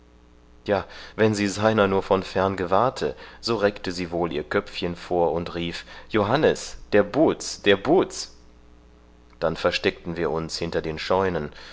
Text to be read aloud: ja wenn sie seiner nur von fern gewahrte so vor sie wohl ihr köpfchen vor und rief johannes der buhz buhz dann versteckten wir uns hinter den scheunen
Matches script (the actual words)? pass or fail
fail